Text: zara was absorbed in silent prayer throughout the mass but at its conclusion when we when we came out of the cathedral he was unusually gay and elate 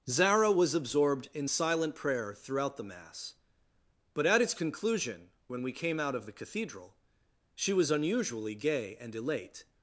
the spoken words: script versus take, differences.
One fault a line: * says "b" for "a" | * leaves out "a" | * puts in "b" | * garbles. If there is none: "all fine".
* leaves out "when we"
* says "she" for "he"